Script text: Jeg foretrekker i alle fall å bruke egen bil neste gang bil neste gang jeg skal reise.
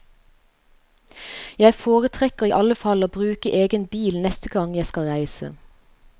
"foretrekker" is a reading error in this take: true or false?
false